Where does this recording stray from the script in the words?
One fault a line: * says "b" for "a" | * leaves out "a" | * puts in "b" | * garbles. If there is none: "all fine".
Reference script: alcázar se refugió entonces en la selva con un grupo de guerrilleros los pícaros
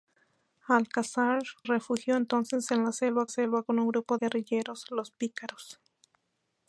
* leaves out "se"
* puts in "selva"
* leaves out "de"